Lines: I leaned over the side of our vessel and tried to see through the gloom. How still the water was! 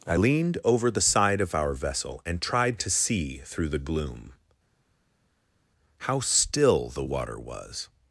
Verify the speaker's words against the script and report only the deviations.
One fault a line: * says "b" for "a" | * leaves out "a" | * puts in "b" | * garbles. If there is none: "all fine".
all fine